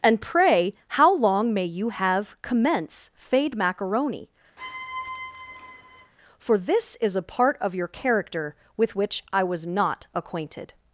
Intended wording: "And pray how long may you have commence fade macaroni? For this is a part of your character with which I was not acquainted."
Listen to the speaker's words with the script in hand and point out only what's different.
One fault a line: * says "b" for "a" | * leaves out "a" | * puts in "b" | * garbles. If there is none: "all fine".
all fine